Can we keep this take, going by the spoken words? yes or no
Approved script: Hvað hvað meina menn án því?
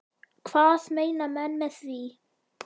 no